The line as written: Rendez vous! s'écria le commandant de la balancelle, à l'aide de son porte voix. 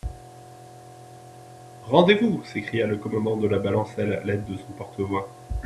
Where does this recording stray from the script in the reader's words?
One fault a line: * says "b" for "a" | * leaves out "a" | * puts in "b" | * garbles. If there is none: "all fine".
all fine